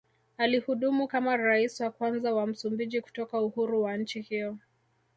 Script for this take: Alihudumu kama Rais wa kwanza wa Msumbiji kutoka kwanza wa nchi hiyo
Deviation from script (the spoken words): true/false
true